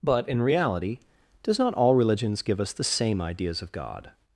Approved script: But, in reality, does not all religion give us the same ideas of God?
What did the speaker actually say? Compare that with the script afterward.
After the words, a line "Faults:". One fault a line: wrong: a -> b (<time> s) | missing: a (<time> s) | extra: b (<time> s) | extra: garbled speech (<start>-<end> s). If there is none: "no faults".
But, in reality, does not all religions give us the same ideas of God?
Faults:
wrong: religion -> religions (1.9 s)